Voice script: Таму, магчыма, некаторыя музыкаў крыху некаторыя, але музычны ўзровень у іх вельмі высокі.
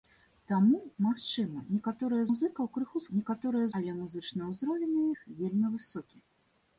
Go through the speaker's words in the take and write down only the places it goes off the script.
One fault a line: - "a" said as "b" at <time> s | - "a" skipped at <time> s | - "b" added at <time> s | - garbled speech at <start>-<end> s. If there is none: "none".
none